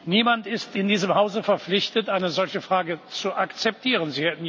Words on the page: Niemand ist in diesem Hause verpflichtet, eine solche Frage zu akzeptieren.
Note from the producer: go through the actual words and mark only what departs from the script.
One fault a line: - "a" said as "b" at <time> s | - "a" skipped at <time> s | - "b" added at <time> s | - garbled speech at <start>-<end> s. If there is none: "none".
none